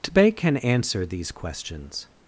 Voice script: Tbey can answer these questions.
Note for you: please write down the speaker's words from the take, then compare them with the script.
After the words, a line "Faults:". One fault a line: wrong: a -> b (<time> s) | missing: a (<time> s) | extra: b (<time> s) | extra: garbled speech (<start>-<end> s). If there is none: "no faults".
Tbey can answer these questions.
Faults:
no faults